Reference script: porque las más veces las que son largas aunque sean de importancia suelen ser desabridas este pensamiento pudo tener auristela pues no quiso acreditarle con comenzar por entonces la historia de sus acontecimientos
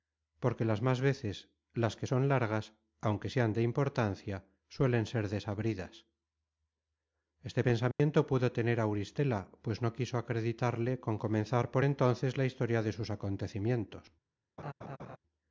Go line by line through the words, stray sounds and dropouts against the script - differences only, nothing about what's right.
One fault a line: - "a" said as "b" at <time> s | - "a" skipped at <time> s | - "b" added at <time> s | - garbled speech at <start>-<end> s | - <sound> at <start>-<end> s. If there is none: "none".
- dropout at 7.9-8.0 s
- laugh at 14.6-15.2 s